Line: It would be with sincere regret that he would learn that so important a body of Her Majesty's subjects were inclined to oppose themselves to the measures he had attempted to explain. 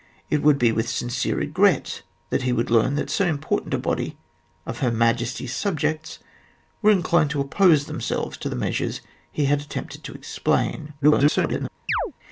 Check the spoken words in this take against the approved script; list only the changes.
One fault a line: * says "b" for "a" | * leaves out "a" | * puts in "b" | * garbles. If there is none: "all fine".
* garbles